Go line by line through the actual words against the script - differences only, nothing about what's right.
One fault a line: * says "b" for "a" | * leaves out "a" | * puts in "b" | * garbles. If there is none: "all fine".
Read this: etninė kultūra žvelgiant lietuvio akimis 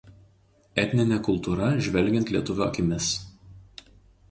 all fine